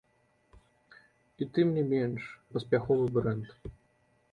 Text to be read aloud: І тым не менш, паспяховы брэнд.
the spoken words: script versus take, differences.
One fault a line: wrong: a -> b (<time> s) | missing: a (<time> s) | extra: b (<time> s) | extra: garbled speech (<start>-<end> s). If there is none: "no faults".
no faults